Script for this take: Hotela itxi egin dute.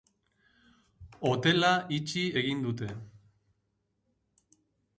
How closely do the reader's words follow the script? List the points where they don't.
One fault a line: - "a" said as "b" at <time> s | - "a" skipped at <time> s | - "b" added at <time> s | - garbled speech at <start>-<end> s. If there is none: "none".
none